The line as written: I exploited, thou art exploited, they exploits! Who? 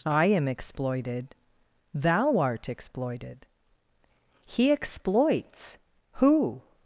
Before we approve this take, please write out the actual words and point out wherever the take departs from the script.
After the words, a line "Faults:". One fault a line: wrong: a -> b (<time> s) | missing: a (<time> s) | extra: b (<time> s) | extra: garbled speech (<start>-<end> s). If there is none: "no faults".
I am exploited, thou art exploited, he exploits! Who?
Faults:
extra: am (0.2 s)
wrong: they -> he (4.5 s)